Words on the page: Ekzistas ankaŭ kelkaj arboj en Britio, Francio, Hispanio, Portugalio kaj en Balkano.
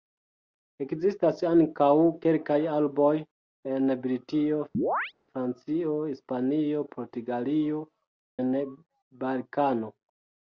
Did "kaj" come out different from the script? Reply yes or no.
yes